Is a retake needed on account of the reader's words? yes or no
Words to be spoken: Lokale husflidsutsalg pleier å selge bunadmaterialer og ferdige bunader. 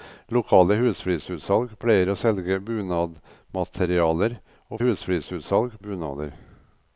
yes